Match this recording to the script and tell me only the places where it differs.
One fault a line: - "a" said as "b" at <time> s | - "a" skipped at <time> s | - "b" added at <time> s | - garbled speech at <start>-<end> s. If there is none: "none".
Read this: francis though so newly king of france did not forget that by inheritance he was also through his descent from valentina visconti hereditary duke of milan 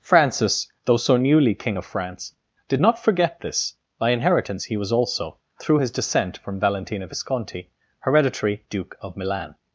- "that" said as "this" at 3.4 s